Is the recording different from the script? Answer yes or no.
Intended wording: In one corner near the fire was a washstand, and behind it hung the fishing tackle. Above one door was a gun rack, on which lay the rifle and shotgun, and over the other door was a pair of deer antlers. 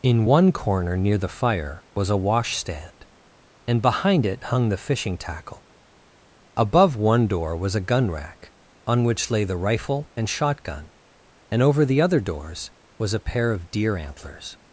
yes